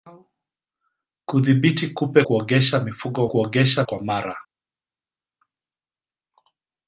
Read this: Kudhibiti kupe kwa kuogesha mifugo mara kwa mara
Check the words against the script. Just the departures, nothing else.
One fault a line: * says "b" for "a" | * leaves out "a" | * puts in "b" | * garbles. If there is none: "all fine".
* leaves out "kwa"
* says "kuogesha" for "mara"